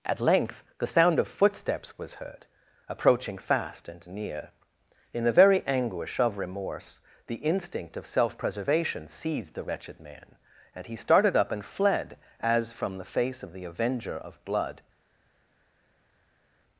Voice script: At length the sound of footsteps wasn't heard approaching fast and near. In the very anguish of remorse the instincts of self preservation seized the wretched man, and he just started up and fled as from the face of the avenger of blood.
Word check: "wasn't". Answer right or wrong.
wrong